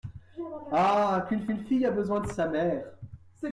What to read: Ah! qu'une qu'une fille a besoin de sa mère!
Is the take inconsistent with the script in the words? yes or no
no